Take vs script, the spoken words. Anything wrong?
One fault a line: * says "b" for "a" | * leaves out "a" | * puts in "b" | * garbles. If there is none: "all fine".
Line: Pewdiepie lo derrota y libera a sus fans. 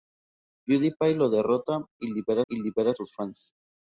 * puts in "y libera"